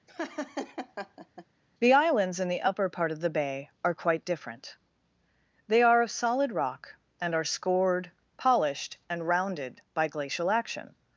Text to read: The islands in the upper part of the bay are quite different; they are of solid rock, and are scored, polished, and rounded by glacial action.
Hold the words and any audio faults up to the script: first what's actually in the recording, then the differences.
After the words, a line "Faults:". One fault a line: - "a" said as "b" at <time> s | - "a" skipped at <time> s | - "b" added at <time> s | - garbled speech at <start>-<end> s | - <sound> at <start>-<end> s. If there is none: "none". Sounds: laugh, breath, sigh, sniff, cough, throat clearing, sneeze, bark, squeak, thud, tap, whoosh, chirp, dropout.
The islands in the upper part of the bay are quite different; they are of solid rock, and are scored, polished, and rounded by glacial action.
Faults:
- laugh at 0.1-1.5 s